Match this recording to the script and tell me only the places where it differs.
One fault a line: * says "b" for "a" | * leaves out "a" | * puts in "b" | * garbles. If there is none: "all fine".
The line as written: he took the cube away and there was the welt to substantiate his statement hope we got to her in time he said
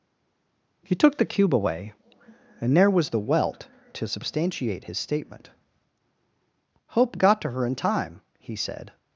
* leaves out "we"